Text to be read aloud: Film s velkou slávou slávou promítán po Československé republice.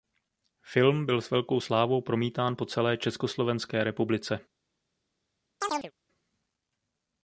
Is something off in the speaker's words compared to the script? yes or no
yes